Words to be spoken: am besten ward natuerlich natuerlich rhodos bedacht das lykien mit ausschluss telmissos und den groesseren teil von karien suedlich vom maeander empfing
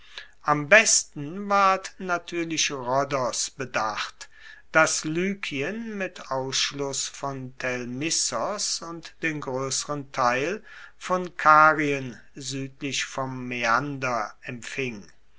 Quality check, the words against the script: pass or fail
fail